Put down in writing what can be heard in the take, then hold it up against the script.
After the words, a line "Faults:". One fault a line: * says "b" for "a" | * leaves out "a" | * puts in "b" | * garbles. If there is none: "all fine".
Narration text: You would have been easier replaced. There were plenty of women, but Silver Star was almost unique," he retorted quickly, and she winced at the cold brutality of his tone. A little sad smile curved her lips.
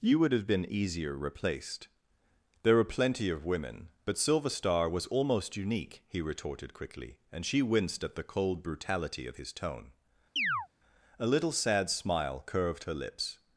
You would have been easier replaced. There were plenty of women, but Silver Star was almost unique," he retorted quickly, and she winced at the cold brutality of his tone. A little sad smile curved her lips.
Faults:
all fine